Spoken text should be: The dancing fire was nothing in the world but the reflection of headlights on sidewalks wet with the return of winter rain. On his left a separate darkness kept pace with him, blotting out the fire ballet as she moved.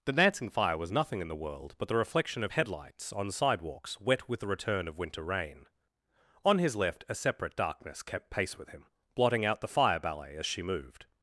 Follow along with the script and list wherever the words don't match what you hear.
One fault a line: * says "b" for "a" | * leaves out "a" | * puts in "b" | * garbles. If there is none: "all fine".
all fine